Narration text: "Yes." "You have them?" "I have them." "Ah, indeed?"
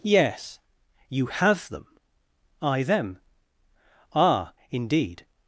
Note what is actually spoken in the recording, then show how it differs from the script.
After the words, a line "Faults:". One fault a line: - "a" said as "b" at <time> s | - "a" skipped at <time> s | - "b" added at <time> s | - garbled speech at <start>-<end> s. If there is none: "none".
"Yes." "You have them?" "I them." "Ah, indeed?"
Faults:
- "have" skipped at 2.8 s